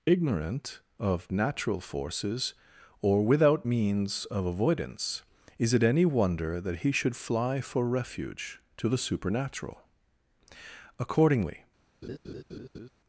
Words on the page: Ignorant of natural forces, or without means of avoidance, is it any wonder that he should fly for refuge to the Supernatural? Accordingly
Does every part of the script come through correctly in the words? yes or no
yes